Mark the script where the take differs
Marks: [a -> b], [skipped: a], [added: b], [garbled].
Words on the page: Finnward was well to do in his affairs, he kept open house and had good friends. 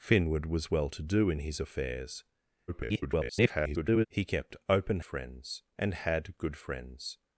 Finnward was well to do in his affairs, [garbled] he kept open [house -> friends] and had good friends.